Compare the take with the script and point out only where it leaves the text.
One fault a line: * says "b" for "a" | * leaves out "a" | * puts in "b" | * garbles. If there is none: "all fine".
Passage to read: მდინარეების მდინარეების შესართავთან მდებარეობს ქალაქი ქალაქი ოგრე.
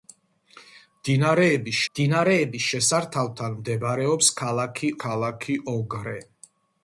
all fine